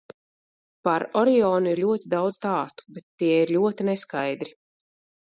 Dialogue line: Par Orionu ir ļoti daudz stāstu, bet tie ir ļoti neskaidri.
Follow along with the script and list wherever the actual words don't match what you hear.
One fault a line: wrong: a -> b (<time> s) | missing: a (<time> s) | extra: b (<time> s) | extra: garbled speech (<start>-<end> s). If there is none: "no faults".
no faults